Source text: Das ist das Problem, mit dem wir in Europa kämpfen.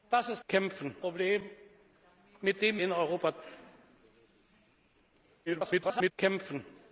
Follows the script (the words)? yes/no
no